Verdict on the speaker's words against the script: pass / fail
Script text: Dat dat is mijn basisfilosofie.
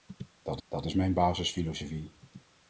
pass